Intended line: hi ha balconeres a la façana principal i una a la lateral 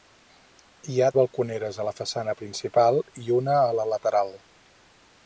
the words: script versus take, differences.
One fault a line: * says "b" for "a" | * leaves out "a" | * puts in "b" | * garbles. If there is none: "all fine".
all fine